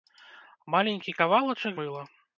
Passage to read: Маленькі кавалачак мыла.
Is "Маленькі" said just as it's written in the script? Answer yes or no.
yes